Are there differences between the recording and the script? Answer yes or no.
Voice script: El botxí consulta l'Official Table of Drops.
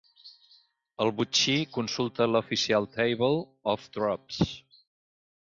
no